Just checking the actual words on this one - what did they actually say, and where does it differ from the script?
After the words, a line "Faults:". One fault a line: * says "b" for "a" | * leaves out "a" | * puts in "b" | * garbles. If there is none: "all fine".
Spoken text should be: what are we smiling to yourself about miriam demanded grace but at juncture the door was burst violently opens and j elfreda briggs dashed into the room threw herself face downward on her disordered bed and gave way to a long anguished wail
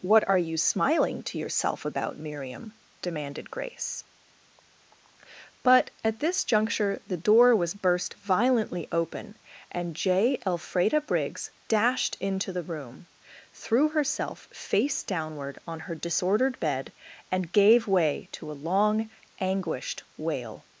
what are you smiling to yourself about miriam demanded grace but at this juncture the door was burst violently open and j elfreda briggs dashed into the room threw herself face downward on her disordered bed and gave way to a long anguished wail
Faults:
* says "you" for "we"
* puts in "this"
* says "open" for "opens"